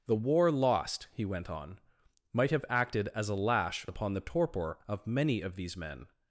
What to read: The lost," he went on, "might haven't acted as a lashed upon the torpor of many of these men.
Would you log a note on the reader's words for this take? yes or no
yes